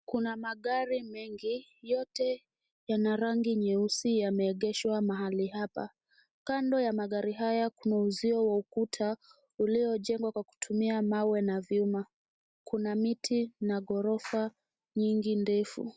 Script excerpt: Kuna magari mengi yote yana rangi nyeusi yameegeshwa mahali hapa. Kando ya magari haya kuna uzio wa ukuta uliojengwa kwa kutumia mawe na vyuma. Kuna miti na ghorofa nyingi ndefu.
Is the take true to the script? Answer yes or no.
yes